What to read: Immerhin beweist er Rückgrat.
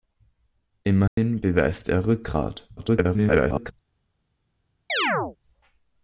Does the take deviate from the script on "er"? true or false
false